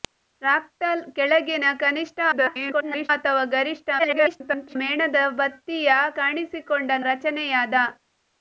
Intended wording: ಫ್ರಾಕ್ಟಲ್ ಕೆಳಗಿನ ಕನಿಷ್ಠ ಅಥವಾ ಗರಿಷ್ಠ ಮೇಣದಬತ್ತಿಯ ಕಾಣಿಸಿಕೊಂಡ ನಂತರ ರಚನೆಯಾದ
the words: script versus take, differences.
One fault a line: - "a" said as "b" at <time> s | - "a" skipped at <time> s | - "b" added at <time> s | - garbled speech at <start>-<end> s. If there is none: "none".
- garbled speech at 2.3-3.1 s
- garbled speech at 4.0-4.8 s
- "ನಂತರ" skipped at 6.9 s